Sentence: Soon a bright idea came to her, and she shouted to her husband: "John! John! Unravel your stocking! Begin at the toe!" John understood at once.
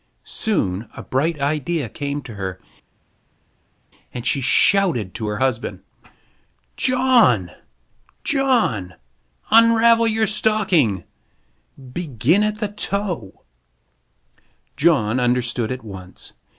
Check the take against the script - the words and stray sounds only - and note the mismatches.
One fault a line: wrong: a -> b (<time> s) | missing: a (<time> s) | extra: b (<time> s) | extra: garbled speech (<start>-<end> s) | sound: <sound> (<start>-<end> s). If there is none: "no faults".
no faults